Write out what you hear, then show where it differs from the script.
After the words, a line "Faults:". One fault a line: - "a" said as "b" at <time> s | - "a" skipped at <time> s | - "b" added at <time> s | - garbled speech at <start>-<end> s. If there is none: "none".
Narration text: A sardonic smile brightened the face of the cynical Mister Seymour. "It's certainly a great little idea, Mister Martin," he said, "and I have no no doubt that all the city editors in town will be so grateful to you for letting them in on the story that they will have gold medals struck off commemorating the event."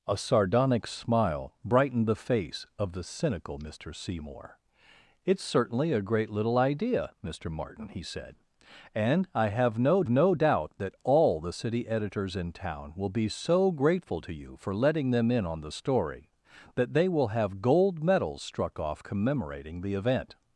A sardonic smile brightened the face of the cynical Mister Seymour. "It's certainly a great little idea, Mister Martin," he said, "and I have no no doubt that all the city editors in town will be so grateful to you for letting them in on the story that they will have gold medals struck off commemorating the event."
Faults:
none